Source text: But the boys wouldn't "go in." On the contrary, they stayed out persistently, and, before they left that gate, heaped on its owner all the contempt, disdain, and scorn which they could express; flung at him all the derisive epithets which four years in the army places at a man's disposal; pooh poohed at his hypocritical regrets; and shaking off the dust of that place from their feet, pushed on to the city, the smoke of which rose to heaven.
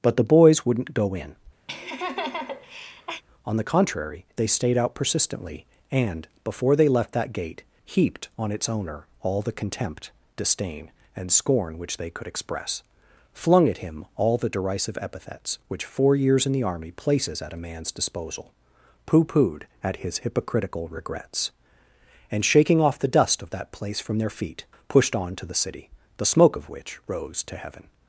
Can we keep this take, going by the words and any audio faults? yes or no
no